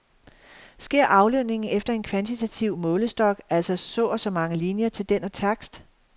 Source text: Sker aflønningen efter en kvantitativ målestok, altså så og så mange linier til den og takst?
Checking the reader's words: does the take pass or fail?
pass